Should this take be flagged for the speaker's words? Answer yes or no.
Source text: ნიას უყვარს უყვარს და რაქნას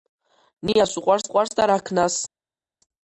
no